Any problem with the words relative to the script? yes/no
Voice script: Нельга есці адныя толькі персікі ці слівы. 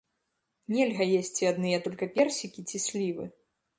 no